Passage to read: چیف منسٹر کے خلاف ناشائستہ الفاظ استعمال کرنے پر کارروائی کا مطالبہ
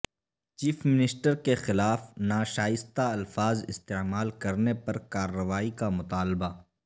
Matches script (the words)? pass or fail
pass